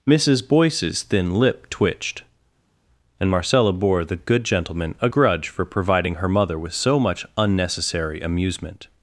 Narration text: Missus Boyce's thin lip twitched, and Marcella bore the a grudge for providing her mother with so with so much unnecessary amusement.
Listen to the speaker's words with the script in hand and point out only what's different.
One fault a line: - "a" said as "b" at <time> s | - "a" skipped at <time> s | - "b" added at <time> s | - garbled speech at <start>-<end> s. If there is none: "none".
- "good gentleman" added at 4.2 s
- "with so" skipped at 7.0 s